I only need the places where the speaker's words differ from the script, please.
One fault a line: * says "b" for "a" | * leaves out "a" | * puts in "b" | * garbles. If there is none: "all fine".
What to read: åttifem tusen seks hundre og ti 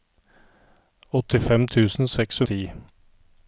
* leaves out "hundre"